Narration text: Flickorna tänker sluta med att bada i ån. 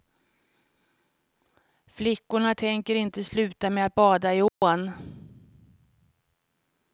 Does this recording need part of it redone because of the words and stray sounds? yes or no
yes